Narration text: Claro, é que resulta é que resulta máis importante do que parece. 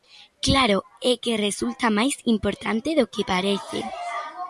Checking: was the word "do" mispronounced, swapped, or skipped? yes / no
no